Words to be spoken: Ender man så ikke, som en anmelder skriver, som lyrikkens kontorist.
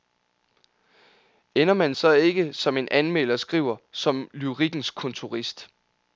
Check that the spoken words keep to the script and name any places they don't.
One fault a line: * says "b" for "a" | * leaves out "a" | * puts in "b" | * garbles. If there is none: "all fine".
all fine